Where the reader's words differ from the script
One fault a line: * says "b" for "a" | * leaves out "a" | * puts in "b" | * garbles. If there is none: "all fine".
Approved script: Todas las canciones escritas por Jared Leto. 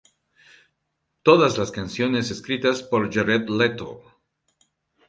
all fine